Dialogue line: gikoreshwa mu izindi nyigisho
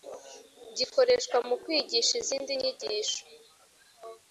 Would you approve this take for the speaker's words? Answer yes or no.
no